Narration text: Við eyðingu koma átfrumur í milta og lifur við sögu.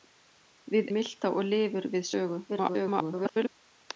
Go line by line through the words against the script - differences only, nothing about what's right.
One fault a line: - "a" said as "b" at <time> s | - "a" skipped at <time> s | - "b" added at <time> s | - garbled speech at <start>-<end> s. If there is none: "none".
- "eyðingu koma átfrumur" skipped at 0.9 s
- garbled speech at 2.5-3.5 s